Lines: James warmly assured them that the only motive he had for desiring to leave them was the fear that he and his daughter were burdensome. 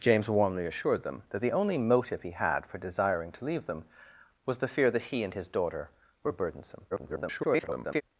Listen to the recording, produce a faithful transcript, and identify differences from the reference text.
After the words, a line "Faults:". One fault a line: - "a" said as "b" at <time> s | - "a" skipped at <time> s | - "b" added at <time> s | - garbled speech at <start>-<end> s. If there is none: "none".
James warmly assured them that the only motive he had for desiring to leave them was the fear that he and his daughter were burdensome. [garbled]
Faults:
- garbled speech at 6.9-8.0 s